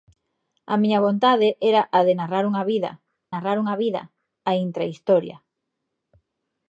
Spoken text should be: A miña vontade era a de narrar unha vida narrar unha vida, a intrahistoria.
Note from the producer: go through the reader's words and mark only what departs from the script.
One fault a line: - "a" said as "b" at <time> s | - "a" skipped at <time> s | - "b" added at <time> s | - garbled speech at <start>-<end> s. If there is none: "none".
none